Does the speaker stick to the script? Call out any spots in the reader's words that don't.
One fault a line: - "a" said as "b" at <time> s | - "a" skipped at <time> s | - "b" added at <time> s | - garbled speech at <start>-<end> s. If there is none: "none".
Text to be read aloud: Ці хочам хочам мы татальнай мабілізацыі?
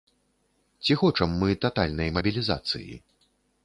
- "хочам" skipped at 1.3 s